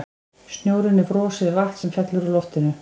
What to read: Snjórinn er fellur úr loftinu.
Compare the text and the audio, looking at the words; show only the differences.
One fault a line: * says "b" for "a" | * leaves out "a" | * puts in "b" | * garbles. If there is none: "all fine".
* puts in "frosið vatn sem"